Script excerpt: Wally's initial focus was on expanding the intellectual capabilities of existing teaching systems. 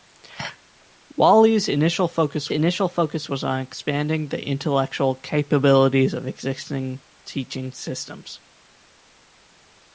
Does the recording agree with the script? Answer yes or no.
no